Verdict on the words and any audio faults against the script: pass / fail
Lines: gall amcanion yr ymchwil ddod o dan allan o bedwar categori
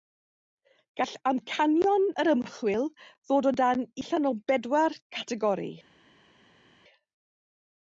pass